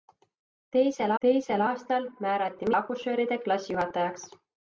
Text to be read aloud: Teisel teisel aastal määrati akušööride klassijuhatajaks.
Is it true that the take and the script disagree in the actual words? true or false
false